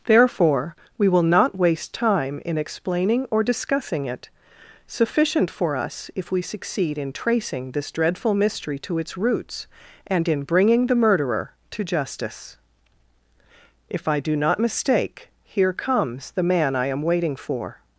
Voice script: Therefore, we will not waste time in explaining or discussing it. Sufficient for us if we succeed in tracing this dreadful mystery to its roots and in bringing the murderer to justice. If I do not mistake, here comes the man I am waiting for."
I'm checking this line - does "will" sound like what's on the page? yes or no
yes